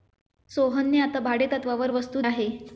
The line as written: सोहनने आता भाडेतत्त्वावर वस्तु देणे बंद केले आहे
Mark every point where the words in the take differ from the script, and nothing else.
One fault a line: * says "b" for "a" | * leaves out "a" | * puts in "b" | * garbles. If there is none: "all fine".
* leaves out "देणे बंद केले"